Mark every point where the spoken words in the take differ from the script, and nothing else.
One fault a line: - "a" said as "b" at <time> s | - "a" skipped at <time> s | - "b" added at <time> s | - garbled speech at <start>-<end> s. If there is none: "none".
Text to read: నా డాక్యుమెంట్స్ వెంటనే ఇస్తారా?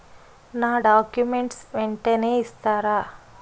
none